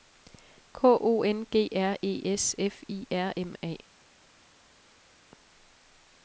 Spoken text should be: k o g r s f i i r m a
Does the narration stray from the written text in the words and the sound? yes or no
yes